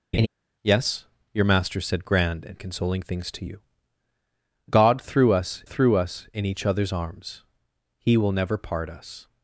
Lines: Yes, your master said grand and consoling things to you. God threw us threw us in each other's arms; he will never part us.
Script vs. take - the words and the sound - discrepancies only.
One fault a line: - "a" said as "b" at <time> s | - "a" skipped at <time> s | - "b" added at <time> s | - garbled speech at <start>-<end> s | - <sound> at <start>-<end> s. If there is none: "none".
- laugh at 0.1-0.3 s